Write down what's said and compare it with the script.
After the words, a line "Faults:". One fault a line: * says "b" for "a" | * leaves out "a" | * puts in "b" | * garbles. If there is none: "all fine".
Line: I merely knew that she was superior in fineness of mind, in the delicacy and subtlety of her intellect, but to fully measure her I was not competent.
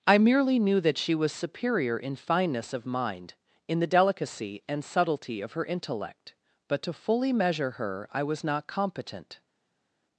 I merely knew that she was superior in fineness of mind, in the delicacy and subtlety of her intellect, but to fully measure her I was not competent.
Faults:
all fine